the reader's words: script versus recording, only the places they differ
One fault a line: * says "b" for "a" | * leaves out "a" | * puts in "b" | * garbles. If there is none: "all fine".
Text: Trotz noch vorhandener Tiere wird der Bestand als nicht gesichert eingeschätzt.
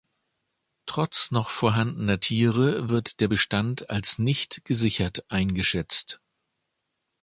all fine